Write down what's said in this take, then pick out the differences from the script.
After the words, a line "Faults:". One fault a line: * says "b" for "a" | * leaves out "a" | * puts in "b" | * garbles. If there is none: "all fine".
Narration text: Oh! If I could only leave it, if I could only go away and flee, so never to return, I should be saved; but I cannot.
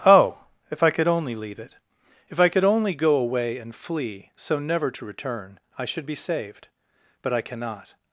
Oh! If I could only leave it, if I could only go away and flee, so never to return, I should be saved; but I cannot.
Faults:
all fine